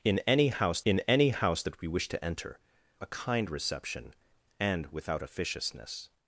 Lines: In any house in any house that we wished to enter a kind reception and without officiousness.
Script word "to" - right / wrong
right